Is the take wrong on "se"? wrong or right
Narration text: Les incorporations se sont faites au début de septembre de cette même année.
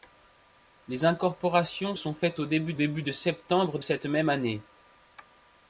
wrong